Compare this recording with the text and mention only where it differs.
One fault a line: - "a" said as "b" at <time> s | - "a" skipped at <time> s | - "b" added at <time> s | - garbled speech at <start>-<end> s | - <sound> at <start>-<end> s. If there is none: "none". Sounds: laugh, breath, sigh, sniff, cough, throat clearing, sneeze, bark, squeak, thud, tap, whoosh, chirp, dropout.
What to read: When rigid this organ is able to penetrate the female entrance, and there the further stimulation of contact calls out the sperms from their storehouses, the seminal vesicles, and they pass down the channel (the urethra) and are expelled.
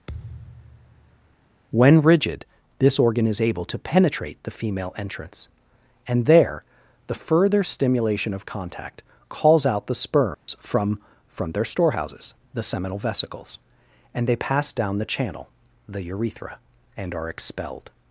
- thud at 0.1-1.4 s
- dropout at 10.3-10.5 s
- "from" added at 11.3 s